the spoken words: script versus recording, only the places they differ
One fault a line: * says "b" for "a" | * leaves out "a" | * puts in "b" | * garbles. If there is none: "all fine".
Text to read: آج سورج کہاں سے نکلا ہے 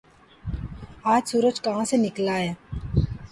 all fine